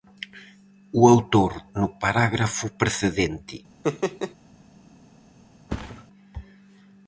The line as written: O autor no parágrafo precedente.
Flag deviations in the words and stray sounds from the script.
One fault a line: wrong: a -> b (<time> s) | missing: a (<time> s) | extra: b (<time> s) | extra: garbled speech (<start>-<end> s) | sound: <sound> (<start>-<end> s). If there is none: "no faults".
sound: laugh (3.8-4.3 s)
sound: thud (5.7-6.1 s)